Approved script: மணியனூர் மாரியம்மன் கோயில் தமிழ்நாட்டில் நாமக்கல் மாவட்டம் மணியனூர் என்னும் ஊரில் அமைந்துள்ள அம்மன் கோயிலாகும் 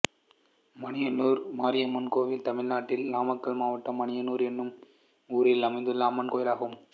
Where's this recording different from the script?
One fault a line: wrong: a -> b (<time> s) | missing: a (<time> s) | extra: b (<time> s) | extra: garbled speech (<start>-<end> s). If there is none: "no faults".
no faults